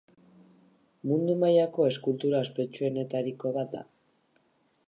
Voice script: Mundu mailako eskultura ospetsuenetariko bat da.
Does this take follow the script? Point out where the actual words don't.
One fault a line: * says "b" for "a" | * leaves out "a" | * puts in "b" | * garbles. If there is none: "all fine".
all fine